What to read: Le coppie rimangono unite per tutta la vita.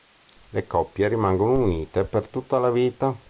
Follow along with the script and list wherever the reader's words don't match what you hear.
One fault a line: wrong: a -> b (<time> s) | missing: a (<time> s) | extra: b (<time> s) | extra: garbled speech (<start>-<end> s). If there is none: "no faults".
no faults